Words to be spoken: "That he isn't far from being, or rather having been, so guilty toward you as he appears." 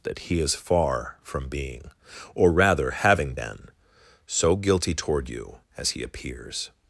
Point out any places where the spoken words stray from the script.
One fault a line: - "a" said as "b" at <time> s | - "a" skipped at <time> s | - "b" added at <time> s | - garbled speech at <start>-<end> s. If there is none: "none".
- "isn't" said as "is" at 0.4 s